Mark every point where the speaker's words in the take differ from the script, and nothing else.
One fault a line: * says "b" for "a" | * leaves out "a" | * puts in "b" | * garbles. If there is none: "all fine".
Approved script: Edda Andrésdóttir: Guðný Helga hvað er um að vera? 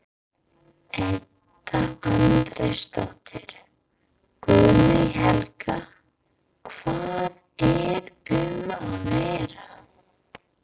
all fine